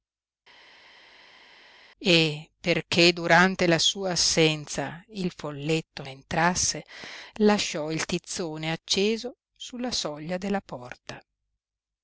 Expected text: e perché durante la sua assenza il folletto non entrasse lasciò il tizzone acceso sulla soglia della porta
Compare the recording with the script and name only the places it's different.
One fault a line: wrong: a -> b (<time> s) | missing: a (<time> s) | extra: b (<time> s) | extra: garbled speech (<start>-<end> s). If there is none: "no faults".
missing: non (6.0 s)